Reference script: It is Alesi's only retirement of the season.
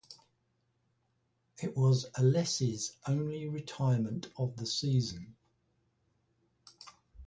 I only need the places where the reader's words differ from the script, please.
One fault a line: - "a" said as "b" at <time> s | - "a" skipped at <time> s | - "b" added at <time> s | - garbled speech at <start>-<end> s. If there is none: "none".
- "is" said as "was" at 1.8 s